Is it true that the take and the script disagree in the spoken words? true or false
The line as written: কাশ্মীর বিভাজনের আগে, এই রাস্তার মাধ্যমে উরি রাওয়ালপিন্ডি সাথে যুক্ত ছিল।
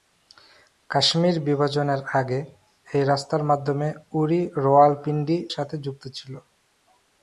false